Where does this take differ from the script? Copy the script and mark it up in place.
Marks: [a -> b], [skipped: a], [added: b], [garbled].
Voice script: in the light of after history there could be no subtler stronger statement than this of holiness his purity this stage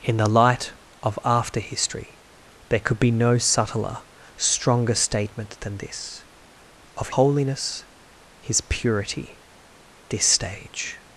in the light of after history there could be no subtler stronger statement than this of holiness his purity this stage